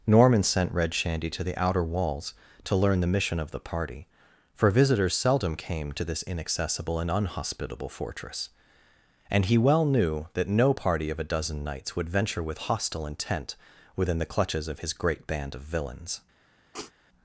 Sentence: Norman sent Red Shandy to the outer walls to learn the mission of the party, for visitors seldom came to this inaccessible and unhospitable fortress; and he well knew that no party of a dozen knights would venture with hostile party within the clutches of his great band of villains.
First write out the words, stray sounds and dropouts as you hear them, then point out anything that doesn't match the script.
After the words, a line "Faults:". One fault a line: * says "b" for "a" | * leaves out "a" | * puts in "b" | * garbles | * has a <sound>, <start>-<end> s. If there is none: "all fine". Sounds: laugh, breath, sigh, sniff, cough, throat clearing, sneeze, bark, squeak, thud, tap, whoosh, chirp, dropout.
Norman sent Red Shandy to the outer walls to learn the mission of the party, for visitors seldom came to this inaccessible and unhospitable fortress; and he well knew that no party of a dozen knights would venture with hostile intent within the clutches of his great band of villains.
Faults:
* says "intent" for "party"
* has a sniff, 16.7-16.9 s